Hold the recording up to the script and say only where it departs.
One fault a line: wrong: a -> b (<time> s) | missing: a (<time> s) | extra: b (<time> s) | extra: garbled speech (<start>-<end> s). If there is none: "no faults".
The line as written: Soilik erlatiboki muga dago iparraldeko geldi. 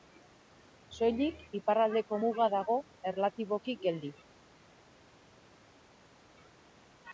wrong: erlatiboki -> iparraldeko (1.6 s)
wrong: iparraldeko -> erlatiboki (3.1 s)